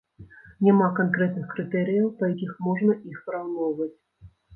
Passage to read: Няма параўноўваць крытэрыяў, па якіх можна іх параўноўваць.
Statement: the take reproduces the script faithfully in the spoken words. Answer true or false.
false